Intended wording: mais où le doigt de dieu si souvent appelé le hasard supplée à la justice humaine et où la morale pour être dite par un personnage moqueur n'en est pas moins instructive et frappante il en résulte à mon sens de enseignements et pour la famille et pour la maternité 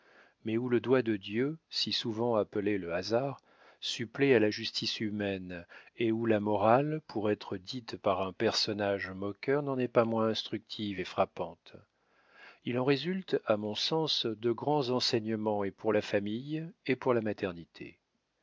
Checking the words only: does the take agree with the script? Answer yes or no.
no